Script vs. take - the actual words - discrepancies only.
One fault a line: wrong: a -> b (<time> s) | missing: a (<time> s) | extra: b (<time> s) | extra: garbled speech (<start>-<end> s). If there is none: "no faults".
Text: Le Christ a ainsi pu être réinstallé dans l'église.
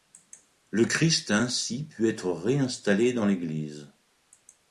no faults